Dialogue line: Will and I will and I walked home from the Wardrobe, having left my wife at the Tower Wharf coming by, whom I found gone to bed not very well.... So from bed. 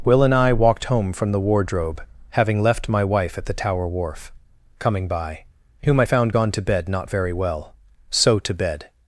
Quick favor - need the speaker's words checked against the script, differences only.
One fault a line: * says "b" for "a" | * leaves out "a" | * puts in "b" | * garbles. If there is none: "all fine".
* leaves out "will and I"
* says "to" for "from"